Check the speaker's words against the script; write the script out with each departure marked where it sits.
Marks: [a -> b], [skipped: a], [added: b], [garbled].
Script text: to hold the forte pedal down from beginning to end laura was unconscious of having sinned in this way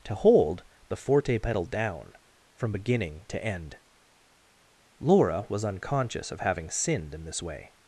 to hold the forte pedal down from beginning to end laura was unconscious of having sinned in this way